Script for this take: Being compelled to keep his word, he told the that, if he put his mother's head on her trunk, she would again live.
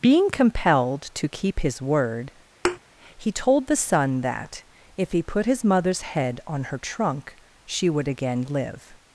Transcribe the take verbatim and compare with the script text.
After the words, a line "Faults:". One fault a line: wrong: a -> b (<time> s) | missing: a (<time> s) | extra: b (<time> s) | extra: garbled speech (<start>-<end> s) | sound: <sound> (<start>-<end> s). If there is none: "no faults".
Being compelled to keep his word, he told the son that, if he put his mother's head on her trunk, she would again live.
Faults:
sound: thud (2.6-2.8 s)
extra: son (3.8 s)